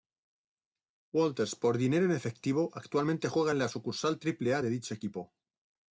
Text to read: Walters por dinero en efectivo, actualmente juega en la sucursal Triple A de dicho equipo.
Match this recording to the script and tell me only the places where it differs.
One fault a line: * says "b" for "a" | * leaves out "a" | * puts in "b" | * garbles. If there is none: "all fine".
all fine